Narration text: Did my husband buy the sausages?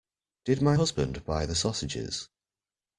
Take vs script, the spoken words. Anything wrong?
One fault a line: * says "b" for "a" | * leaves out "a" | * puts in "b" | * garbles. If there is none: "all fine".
all fine